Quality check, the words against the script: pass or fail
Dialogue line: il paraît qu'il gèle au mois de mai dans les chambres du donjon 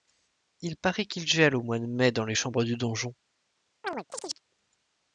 pass